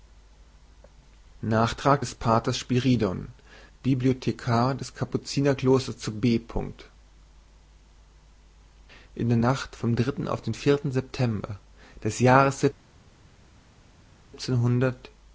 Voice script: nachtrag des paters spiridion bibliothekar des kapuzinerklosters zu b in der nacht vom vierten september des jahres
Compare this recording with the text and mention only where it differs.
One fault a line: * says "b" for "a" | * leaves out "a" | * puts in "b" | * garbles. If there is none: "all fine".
* puts in "dritten auf den"